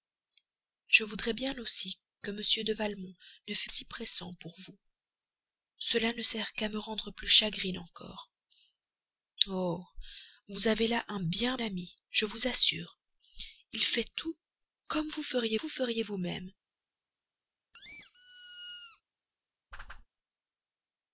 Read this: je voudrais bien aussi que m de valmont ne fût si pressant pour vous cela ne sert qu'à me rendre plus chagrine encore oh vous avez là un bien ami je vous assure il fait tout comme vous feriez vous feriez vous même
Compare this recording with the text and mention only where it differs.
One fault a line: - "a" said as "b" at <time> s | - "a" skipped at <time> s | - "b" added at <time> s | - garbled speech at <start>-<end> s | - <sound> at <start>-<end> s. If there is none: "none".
- squeak at 17.7-19.0 s
- whoosh at 19.7-20.1 s